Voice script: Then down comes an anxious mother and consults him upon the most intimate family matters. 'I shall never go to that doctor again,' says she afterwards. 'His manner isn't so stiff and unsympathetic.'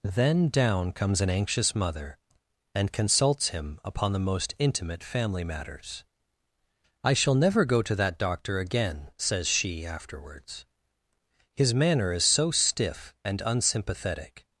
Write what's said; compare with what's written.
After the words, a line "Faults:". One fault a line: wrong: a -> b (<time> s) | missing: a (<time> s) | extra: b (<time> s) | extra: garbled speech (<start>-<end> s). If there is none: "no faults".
Then down comes an anxious mother and consults him upon the most intimate family matters. 'I shall never go to that doctor again,' says she afterwards. 'His manner is so stiff and unsympathetic.'
Faults:
wrong: isn't -> is (12.1 s)